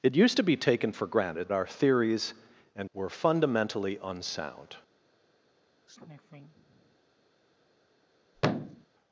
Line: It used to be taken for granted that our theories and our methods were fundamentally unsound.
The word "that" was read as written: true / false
false